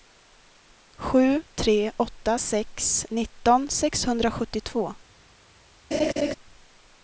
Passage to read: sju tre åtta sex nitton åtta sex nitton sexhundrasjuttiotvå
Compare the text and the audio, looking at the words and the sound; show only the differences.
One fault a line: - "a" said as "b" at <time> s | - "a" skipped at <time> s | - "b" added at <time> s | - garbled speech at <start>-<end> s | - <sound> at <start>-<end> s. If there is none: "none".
- "åtta sex nitton" skipped at 3.7 s
- laugh at 5.9-6.3 s